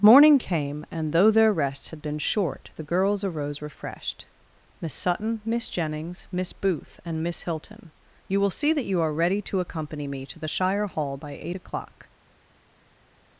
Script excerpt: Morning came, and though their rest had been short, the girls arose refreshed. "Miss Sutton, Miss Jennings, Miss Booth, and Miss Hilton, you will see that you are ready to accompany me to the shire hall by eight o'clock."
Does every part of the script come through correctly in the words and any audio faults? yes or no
yes